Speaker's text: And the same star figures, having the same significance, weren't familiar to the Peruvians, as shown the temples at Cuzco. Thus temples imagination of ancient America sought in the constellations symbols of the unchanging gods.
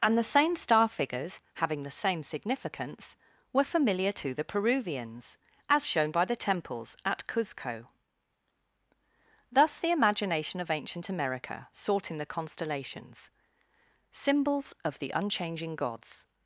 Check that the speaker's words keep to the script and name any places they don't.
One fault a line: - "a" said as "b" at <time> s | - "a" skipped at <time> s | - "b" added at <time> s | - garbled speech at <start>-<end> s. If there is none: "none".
- "weren't" said as "were" at 3.5 s
- "by" added at 6.1 s
- "temples" said as "the" at 9.8 s